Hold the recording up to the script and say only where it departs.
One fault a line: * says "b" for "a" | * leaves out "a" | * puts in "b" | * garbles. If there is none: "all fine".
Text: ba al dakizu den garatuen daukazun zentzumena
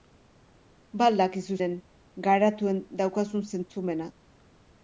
all fine